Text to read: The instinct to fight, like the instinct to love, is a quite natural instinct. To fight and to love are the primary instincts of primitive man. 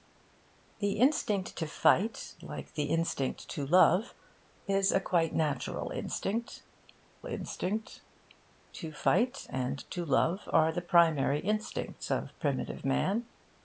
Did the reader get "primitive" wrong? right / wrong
right